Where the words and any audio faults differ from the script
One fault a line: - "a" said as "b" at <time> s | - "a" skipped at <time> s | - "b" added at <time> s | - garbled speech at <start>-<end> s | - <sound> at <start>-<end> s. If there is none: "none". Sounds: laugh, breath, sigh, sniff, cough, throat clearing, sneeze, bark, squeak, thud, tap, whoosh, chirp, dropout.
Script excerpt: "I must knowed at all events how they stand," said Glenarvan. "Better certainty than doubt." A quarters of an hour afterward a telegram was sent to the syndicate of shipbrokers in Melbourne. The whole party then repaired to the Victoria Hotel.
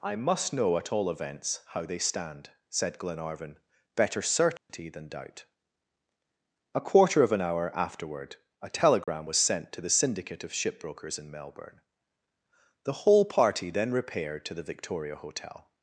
- "knowed" said as "know" at 0.5 s
- dropout at 4.6-4.7 s
- "quarters" said as "quarter" at 6.8 s
- dropout at 9.0-9.1 s